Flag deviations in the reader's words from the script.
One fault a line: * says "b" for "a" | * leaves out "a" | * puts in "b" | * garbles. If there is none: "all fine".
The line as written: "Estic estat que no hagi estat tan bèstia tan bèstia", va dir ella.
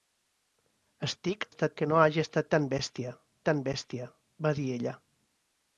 all fine